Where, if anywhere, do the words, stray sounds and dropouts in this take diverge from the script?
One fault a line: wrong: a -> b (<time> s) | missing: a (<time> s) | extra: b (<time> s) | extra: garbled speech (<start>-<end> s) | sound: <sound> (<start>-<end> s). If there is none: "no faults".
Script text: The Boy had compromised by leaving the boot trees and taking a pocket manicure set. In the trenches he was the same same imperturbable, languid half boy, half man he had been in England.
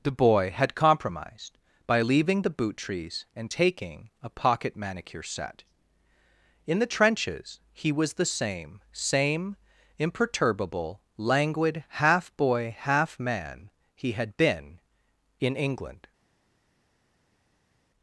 no faults